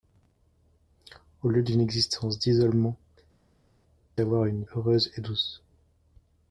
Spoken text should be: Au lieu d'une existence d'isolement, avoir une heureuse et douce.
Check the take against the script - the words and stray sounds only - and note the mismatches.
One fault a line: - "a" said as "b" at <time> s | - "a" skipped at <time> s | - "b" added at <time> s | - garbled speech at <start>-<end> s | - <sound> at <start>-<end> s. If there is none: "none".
none